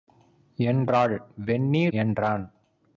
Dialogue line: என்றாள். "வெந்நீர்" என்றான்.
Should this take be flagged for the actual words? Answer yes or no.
no